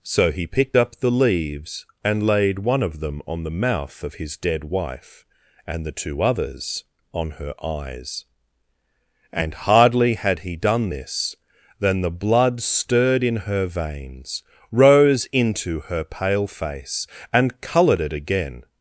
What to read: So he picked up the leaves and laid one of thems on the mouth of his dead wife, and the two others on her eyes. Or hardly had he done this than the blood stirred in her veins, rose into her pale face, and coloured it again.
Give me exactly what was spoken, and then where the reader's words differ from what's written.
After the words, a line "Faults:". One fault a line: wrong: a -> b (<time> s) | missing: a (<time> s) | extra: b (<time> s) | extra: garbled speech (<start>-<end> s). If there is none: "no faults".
So he picked up the leaves and laid one of them on the mouth of his dead wife, and the two others on her eyes. And hardly had he done this than the blood stirred in her veins, rose into her pale face, and coloured it again.
Faults:
wrong: thems -> them (3.0 s)
wrong: Or -> And (9.3 s)